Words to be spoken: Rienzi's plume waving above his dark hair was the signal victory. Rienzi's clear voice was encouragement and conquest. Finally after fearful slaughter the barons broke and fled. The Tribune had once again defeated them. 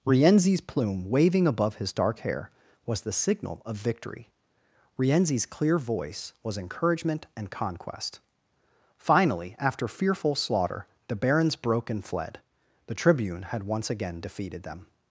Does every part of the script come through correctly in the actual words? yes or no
no